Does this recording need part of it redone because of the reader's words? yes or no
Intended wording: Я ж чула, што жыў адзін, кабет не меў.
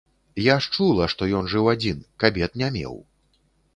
yes